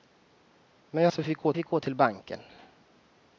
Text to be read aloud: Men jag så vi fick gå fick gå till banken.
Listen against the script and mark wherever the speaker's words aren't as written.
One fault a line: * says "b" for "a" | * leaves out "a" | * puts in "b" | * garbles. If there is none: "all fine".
all fine